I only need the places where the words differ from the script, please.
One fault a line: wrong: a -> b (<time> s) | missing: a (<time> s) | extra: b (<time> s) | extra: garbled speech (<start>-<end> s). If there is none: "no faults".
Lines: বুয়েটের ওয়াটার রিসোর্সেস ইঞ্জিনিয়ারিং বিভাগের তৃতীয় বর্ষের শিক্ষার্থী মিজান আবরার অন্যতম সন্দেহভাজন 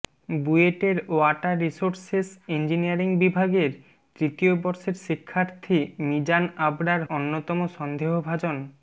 no faults